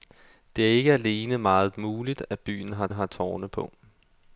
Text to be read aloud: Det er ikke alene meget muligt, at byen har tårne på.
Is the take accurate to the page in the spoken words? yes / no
no